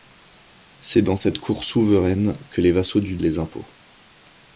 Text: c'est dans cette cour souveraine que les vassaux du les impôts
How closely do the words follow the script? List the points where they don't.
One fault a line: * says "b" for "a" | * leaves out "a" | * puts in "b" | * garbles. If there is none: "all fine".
all fine